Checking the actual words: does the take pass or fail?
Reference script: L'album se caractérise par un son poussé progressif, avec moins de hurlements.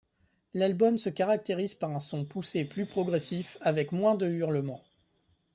fail